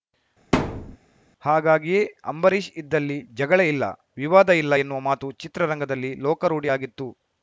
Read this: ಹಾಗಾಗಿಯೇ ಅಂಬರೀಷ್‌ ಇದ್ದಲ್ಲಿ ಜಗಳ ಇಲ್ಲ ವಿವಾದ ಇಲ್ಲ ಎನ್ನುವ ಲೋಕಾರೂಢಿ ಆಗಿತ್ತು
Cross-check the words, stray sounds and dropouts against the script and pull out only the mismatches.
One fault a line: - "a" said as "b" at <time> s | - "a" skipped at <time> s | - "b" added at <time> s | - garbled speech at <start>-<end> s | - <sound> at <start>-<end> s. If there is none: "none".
- thud at 0.5-1.0 s
- "ಮಾತು ಚಿತ್ರರಂಗದಲ್ಲಿ" added at 5.0 s